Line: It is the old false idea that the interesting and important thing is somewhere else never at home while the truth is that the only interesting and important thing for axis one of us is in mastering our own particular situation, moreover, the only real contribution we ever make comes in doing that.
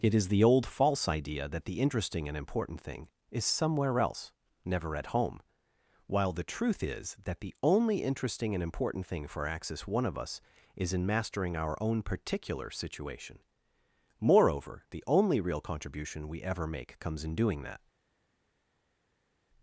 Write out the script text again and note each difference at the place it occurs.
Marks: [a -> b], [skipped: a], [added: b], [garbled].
It is the old false idea that the interesting and important thing is somewhere else never at home while the truth is that the only interesting and important thing for axis one of us is in mastering our own particular situation, moreover, the only real contribution we ever make comes in doing that.